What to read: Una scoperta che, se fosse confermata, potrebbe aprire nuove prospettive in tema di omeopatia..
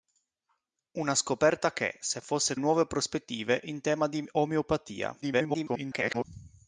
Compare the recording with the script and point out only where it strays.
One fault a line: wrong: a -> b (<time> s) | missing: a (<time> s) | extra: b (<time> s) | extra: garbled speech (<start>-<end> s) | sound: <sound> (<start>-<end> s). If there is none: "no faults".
missing: confermata potrebbe aprire (2.5 s)
extra: garbled speech (5.2-6.2 s)